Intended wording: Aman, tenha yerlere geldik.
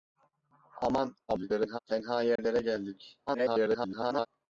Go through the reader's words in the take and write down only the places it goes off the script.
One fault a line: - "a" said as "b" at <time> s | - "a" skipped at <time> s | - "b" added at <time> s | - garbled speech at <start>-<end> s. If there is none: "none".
- garbled speech at 1.3-1.8 s
- garbled speech at 3.3-4.3 s